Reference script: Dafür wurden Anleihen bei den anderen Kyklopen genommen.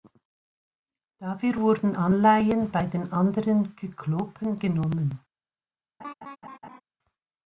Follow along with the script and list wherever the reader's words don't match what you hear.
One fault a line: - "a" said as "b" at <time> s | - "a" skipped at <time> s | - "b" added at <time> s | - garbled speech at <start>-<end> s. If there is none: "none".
none